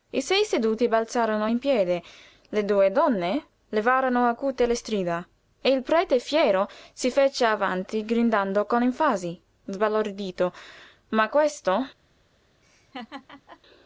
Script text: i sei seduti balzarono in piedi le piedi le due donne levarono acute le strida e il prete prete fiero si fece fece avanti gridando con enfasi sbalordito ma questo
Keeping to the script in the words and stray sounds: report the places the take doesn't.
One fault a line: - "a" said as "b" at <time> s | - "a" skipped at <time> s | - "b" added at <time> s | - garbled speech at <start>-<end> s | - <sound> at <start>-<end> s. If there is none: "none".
- "piedi le" skipped at 2.6 s
- "prete" skipped at 6.2 s
- "fece" skipped at 7.4 s
- laugh at 12.6-13.6 s